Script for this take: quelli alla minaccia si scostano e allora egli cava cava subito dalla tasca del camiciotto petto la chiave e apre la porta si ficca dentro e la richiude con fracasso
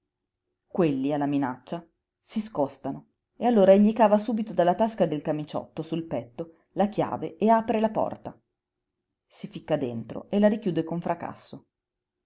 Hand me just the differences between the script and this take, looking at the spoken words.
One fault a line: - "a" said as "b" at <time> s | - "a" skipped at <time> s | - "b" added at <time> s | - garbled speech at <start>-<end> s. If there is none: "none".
- "cava" skipped at 4.2 s
- "sul" added at 5.8 s